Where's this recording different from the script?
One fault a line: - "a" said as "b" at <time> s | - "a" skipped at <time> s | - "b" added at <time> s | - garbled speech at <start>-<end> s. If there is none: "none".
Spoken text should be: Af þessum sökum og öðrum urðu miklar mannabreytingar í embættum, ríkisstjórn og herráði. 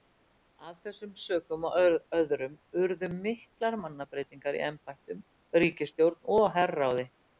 none